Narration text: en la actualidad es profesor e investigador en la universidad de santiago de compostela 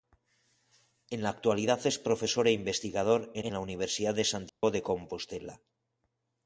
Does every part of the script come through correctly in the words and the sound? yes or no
no